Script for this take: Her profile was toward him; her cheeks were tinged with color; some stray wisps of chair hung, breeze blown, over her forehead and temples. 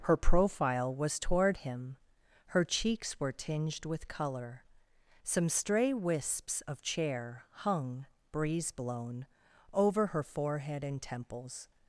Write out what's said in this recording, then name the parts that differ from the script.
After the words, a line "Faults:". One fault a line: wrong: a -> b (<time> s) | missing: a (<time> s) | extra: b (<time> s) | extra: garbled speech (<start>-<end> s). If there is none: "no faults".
Her profile was toward him; her cheeks were tinged with color; some stray wisps of chair hung, breeze blown, over her forehead and temples.
Faults:
no faults